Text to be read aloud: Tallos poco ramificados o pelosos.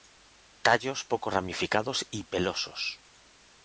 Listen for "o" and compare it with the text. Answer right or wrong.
wrong